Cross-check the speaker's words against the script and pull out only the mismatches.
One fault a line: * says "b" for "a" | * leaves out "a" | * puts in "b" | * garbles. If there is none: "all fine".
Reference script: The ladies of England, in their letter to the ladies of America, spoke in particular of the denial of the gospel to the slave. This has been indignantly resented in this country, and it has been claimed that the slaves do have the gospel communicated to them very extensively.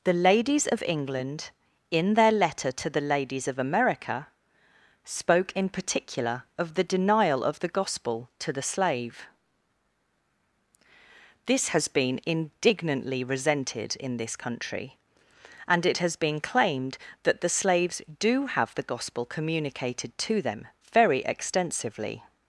all fine